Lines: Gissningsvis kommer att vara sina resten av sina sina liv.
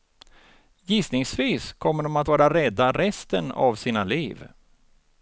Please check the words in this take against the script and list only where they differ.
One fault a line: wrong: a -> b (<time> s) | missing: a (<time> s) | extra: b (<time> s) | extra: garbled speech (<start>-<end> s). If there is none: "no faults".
extra: de (2.0 s)
wrong: sina -> rädda (2.5 s)
missing: sina (4.0 s)